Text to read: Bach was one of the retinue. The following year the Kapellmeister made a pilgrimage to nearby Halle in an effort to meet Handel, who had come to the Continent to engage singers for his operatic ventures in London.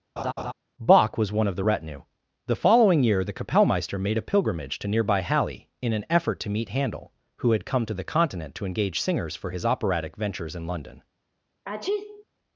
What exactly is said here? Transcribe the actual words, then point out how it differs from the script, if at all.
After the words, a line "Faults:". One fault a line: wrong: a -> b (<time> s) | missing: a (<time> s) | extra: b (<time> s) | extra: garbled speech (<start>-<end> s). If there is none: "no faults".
Bach was one of the retinue. The following year the Kapellmeister made a pilgrimage to nearby Halle in an effort to meet Handel, who had come to the Continent to engage singers for his operatic ventures in London.
Faults:
no faults